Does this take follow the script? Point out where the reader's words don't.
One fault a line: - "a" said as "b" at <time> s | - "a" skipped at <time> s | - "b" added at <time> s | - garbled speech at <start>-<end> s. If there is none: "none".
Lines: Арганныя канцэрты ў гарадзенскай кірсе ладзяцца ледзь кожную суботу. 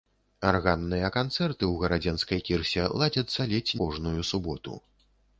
none